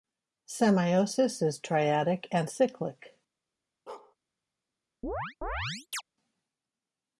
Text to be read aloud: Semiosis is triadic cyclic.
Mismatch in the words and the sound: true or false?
true